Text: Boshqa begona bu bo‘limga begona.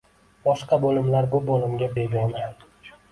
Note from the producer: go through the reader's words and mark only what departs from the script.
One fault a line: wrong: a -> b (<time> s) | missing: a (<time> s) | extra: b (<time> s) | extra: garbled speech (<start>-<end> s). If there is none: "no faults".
wrong: begona -> bo‘limlar (0.8 s)